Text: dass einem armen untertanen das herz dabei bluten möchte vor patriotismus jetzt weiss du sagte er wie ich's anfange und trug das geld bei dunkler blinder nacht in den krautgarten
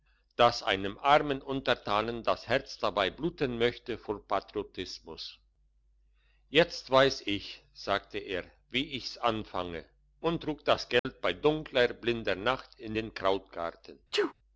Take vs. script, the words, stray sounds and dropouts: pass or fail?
fail